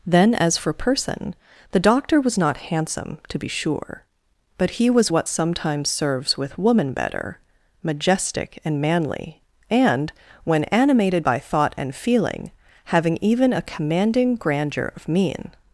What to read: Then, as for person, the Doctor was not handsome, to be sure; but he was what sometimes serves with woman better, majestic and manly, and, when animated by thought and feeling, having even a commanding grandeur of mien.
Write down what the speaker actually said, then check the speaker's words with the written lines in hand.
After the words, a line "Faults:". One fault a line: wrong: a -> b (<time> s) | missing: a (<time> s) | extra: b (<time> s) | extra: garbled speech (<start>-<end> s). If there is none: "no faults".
Then, as for person, the Doctor was not handsome, to be sure; but he was what sometimes serves with woman better, majestic and manly, and, when animated by thought and feeling, having even a commanding grandeur of mien.
Faults:
no faults